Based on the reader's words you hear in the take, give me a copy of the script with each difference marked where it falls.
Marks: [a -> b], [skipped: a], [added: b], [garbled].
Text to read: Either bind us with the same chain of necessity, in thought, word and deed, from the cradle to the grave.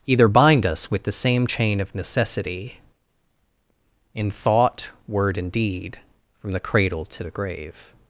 Either bind us with the same chain of necessity, in thought, word and deed, from the cradle to the grave.